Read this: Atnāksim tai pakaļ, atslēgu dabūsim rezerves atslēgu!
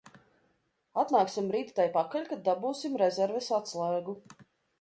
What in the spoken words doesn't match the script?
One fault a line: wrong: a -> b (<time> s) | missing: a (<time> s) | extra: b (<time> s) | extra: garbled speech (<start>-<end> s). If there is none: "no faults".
extra: rīt (1.5 s)
wrong: atslēgu -> kad (2.3 s)